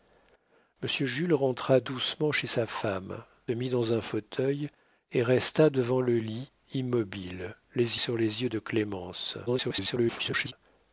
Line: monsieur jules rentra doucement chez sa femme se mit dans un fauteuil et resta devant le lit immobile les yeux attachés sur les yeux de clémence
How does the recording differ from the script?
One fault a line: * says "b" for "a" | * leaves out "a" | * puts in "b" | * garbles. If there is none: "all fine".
* leaves out "se"
* leaves out "yeux attachés"
* garbles